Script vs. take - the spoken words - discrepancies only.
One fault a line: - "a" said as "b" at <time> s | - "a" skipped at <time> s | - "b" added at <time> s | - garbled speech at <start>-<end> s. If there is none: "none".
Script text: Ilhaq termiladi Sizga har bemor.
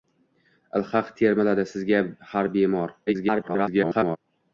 - garbled speech at 3.1-4.2 s